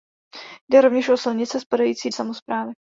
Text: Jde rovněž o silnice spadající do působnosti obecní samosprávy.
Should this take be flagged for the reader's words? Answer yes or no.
yes